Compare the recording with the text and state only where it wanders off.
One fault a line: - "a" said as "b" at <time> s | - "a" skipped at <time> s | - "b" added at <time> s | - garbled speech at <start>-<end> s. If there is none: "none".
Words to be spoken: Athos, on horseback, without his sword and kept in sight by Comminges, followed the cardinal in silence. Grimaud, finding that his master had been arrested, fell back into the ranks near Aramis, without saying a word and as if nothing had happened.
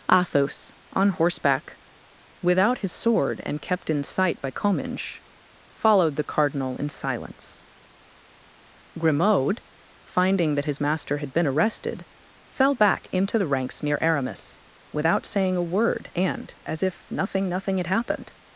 - "nothing" added at 17.5 s